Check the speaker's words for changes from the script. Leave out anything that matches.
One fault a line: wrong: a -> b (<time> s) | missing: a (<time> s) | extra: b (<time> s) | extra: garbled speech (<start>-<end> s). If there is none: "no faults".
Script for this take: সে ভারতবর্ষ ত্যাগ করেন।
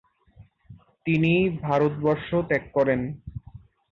wrong: সে -> তিনি (1.1 s)